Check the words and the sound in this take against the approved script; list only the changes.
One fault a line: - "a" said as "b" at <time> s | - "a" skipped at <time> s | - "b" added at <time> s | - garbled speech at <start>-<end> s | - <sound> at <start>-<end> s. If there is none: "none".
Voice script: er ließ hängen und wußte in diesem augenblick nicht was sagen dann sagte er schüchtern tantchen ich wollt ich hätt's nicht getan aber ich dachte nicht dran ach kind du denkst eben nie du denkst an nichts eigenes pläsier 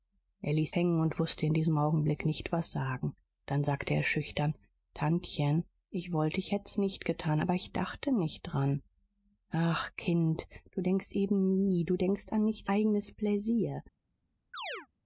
- chirp at 14.5-14.9 s